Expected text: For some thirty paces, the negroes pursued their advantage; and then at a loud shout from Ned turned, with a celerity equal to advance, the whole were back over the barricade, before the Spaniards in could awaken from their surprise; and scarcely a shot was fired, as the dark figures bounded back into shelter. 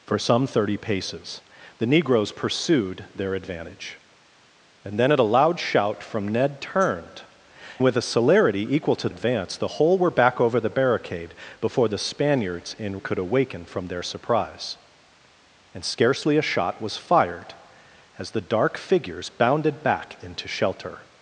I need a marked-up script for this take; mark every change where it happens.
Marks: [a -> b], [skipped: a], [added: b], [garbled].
For some thirty paces, the negroes pursued their advantage; and then at a loud shout from Ned turned, with a celerity equal to advance, the whole were back over the barricade, before the Spaniards in could awaken from their surprise; and scarcely a shot was fired, as the dark figures bounded back into shelter.